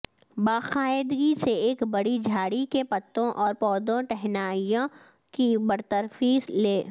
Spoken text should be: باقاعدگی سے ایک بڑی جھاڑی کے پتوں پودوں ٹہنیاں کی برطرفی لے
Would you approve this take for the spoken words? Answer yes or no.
no